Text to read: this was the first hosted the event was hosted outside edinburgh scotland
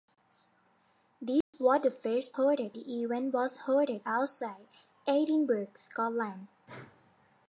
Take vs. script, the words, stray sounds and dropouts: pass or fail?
fail